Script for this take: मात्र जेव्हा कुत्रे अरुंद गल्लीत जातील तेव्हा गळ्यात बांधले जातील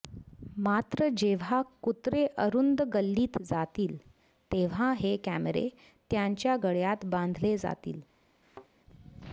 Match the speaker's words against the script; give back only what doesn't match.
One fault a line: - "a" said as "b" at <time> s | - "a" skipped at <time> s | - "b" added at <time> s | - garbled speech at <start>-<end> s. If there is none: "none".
- "हे कॅमेरे त्यांच्या" added at 5.0 s